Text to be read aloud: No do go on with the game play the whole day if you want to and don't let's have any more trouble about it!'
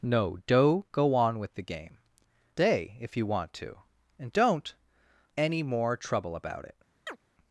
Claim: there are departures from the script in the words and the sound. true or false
true